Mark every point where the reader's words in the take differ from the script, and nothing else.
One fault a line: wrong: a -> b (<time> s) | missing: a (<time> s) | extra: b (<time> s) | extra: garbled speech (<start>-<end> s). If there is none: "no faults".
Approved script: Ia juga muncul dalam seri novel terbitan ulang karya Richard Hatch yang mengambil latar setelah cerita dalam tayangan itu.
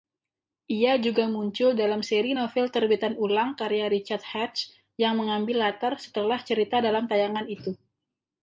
no faults